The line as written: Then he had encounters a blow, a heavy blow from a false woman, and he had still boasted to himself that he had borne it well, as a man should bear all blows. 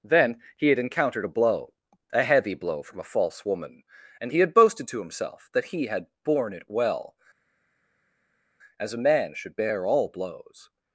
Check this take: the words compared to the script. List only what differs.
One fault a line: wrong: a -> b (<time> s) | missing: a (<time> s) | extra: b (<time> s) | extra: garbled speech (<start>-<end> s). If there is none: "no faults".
wrong: encounters -> encountered (0.8 s)
missing: still (4.5 s)